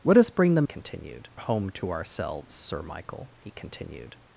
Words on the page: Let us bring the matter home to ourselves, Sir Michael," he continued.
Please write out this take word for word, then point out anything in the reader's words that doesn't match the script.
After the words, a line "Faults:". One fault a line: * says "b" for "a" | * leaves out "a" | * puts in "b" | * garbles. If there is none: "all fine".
Let us bring the continued home to ourselves, Sir Michael," he continued.
Faults:
* says "continued" for "matter"